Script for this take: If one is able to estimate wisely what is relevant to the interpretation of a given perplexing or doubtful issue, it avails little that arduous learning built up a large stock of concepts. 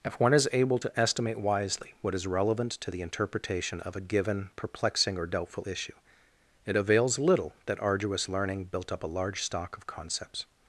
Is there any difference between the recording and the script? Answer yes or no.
no